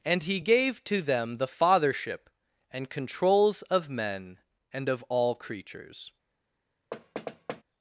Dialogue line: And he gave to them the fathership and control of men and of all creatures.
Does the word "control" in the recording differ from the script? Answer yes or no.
yes